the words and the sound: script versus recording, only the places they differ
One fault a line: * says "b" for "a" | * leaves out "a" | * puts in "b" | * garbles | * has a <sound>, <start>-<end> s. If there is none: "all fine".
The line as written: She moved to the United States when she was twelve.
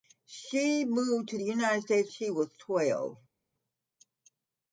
* leaves out "when"